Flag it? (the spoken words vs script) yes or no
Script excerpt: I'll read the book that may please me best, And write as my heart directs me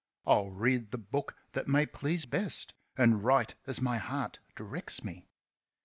yes